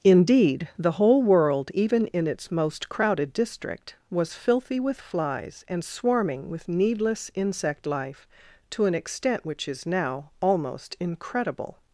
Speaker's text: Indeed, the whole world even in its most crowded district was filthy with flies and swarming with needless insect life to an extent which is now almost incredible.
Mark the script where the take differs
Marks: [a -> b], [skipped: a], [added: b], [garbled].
Indeed, the whole world even in its most crowded district was filthy with flies and swarming with needless insect life to an extent which is now almost incredible.